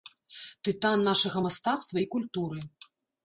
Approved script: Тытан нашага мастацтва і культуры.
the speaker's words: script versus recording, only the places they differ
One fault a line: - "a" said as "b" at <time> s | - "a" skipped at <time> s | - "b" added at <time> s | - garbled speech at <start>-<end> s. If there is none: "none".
none